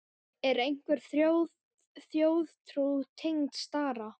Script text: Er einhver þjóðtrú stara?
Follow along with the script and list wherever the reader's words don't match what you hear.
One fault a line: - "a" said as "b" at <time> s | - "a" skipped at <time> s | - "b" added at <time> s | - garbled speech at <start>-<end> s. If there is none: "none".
- "tengd" added at 3.2 s